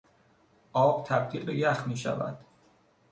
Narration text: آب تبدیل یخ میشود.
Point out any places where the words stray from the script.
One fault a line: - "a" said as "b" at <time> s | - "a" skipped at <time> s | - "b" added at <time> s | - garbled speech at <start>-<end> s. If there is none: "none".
- "به" added at 1.4 s